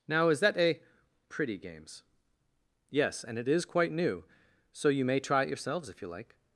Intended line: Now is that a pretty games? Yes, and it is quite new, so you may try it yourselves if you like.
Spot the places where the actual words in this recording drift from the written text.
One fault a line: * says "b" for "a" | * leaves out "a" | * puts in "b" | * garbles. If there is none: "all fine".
all fine